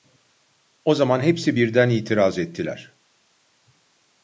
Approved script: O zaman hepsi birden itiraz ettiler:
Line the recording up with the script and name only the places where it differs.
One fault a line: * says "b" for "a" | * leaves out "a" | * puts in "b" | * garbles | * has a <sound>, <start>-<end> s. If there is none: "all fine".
all fine